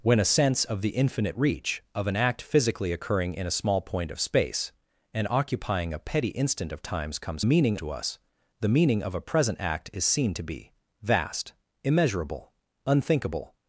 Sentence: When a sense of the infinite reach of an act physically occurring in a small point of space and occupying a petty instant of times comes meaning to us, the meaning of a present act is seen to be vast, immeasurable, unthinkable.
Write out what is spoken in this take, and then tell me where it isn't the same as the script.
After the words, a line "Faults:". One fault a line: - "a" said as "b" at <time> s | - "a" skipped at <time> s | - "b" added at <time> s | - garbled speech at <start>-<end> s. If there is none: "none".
When a sense of the infinite reach of an act physically occurring in a small point of space and occupying a petty instant of times comes meaning to us, the meaning of a present act is seen to be vast, immeasurable, unthinkable.
Faults:
none